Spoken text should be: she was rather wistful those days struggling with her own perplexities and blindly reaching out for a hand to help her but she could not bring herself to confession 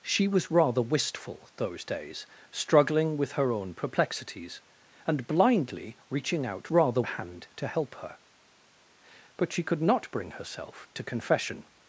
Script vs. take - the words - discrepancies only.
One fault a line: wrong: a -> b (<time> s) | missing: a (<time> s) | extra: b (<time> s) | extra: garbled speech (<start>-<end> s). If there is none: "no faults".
wrong: for -> rather (6.7 s)